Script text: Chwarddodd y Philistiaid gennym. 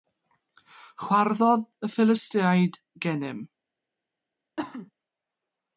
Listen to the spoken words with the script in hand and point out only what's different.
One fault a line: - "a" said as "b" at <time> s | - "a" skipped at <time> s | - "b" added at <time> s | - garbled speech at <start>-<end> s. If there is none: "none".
none